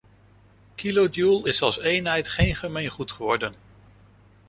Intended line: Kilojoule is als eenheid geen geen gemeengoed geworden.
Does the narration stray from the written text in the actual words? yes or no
yes